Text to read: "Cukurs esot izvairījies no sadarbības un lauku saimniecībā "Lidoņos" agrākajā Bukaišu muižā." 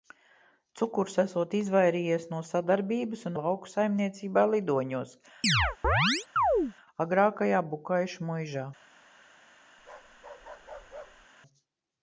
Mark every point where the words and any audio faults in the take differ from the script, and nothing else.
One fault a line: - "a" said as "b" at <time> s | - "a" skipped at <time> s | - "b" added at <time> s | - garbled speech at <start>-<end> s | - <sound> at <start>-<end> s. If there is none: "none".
- chirp at 5.4-6.7 s
- bark at 9.8-11.3 s